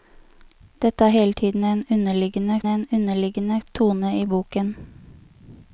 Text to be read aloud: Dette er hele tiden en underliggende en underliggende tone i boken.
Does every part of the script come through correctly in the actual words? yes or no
yes